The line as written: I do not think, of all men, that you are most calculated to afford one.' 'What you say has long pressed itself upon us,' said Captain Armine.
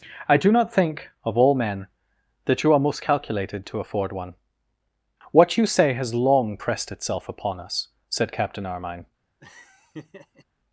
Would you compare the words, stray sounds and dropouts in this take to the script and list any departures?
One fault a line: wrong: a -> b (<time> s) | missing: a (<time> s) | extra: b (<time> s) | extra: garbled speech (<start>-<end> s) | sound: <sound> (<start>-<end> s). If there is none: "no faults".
sound: laugh (9.4-10.4 s)